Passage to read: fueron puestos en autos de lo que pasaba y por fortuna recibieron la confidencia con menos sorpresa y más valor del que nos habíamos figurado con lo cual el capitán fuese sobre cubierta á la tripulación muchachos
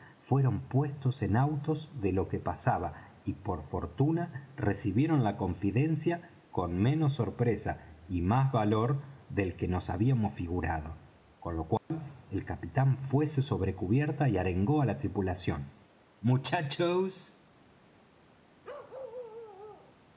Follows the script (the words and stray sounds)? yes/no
no